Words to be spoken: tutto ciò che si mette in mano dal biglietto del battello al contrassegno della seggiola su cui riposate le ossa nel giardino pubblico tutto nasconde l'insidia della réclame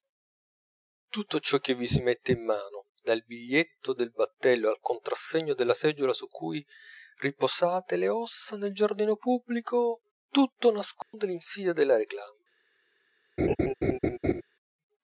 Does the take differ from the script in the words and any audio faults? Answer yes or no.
yes